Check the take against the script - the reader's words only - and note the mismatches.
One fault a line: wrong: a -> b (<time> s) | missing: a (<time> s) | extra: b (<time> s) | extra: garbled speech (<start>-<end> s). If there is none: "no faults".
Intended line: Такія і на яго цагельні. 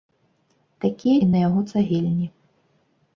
no faults